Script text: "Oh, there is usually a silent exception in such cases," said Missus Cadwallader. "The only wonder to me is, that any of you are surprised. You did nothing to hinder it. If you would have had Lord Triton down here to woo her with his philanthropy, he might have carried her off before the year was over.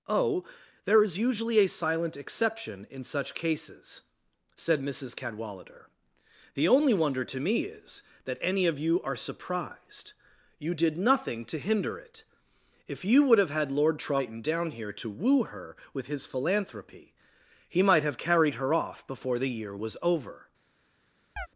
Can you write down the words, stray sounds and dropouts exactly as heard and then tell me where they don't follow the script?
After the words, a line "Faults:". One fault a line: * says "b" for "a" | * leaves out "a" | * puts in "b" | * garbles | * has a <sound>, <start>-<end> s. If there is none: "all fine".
"Oh, there is usually a silent exception in such cases," said Missus Cadwallader. "The only wonder to me is, that any of you are surprised. You did nothing to hinder it. If you would have had Lord Triton down here to woo her with his philanthropy, he might have carried her off before the year was over.
Faults:
* has a chirp, 21.4-21.5 s